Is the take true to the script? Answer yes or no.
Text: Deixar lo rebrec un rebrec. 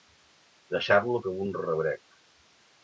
no